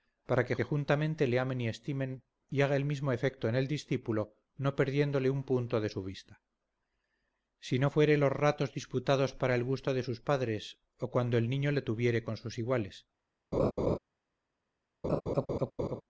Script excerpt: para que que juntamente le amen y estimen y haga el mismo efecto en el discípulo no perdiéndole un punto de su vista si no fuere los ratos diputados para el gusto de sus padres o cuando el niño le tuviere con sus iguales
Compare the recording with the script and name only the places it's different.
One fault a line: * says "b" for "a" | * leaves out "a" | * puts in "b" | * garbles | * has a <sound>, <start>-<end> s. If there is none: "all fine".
* has a laugh, 13.5-14.0 s
* has a laugh, 15.0-16.0 s